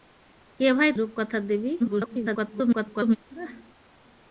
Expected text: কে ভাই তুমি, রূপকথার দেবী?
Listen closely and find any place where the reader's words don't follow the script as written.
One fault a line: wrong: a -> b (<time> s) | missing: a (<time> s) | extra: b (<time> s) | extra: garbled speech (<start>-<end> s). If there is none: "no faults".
missing: তুমি (0.9 s)
extra: garbled speech (1.8-3.2 s)